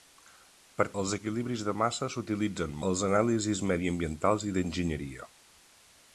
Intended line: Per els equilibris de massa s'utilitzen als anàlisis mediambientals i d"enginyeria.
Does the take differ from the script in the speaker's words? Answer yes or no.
no